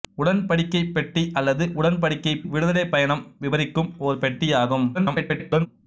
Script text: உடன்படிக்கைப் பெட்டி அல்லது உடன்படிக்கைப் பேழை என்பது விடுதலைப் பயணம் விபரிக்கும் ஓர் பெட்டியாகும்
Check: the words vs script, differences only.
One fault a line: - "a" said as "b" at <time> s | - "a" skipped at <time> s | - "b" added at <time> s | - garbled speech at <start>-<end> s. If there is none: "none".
- "பேழை என்பது" skipped at 2.4 s
- garbled speech at 4.9-5.7 s